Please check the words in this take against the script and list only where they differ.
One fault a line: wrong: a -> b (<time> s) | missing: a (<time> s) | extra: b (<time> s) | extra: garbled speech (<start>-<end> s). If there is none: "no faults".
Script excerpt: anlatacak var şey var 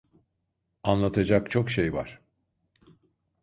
wrong: var -> çok (1.5 s)